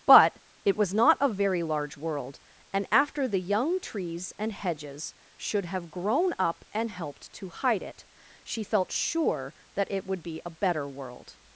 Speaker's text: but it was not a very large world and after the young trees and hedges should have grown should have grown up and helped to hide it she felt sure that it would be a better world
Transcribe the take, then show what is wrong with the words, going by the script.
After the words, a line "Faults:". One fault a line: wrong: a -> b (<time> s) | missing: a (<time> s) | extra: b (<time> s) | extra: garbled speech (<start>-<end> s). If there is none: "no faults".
but it was not a very large world and after the young trees and hedges should have grown up and helped to hide it she felt sure that it would be a better world
Faults:
missing: should have grown (6.3 s)